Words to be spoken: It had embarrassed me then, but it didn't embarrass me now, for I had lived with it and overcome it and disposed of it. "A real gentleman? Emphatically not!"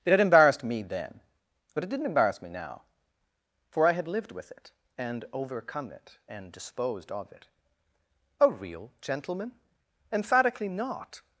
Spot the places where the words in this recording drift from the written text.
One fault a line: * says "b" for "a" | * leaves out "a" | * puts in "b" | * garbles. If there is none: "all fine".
all fine